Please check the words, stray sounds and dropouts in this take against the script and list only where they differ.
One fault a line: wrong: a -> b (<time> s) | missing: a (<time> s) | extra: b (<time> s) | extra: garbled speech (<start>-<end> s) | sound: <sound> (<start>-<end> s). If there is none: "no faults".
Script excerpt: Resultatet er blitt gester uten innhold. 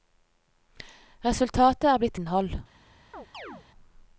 missing: gester uten (2.2 s)
sound: chirp (3.1-3.7 s)